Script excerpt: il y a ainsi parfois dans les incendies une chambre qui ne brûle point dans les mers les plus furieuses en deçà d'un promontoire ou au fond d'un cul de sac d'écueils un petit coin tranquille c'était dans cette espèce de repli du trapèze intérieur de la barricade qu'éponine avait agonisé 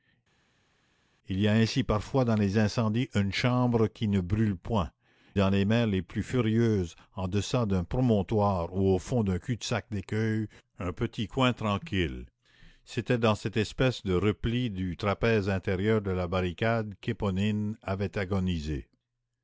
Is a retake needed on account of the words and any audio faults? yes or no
no